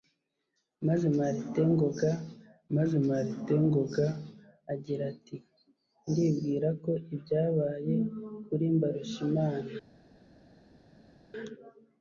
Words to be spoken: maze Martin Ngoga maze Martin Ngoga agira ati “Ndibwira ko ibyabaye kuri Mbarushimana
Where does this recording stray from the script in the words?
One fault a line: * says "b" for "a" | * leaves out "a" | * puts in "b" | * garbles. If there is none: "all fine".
all fine